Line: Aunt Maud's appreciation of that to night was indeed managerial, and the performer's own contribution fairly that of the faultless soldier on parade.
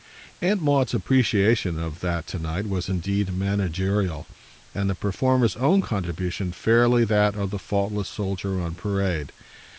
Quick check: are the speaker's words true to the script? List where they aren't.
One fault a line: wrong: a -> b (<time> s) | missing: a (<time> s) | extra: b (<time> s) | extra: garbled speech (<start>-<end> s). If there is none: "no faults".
no faults